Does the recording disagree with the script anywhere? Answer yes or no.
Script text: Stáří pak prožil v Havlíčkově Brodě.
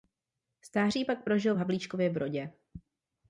no